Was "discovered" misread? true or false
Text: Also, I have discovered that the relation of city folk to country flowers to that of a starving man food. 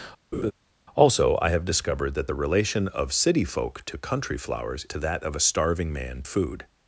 false